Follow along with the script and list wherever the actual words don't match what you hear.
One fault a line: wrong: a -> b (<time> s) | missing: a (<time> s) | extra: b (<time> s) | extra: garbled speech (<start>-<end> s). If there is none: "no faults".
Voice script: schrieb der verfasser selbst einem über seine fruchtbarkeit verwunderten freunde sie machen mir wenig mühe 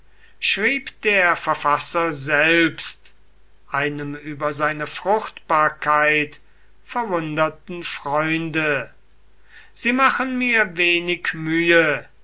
no faults